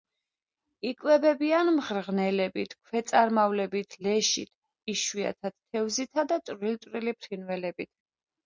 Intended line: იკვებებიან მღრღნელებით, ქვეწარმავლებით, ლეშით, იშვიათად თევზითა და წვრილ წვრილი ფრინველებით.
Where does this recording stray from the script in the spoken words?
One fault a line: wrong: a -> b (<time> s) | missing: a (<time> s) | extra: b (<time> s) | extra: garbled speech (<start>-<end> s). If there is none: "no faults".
no faults